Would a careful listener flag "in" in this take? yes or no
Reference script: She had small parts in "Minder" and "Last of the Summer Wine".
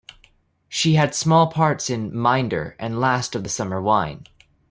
no